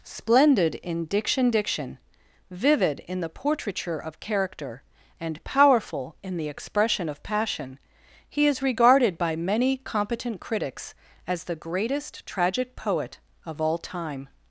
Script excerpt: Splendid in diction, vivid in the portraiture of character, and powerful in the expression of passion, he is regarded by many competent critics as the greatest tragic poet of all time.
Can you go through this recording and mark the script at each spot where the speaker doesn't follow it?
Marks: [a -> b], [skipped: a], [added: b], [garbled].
Splendid in diction, [added: diction] vivid in the portraiture of character, and powerful in the expression of passion, he is regarded by many competent critics as the greatest tragic poet of all time.